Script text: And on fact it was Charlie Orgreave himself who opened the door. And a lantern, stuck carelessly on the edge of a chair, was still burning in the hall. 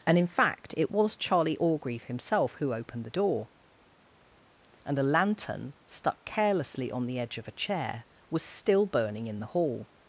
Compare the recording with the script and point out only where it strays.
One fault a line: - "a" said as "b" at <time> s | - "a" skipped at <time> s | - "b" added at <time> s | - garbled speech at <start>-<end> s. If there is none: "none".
- "on" said as "in" at 0.2 s